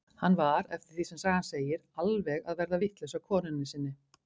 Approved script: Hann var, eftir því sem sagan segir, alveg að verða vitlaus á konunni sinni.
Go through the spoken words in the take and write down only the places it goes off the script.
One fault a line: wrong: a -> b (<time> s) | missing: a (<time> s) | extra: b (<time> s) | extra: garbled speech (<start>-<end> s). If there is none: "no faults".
no faults